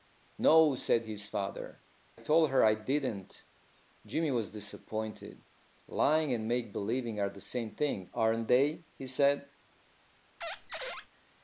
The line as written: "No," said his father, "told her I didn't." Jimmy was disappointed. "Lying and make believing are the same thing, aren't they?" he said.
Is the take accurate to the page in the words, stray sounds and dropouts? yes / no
no